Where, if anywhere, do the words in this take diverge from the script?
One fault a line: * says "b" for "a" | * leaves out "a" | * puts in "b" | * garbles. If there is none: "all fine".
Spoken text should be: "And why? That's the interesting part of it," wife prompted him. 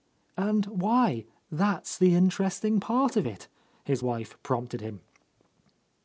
* puts in "his"